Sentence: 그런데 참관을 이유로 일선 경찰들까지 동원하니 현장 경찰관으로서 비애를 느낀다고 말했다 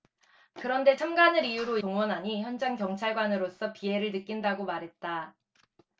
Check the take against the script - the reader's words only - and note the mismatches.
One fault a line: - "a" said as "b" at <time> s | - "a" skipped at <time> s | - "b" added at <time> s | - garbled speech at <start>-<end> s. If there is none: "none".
- "일선 경찰들까지" skipped at 1.8 s